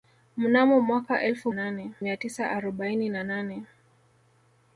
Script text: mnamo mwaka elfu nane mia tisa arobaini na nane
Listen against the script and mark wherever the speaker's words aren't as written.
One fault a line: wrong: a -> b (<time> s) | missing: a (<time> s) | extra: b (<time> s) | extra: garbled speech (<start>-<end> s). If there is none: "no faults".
no faults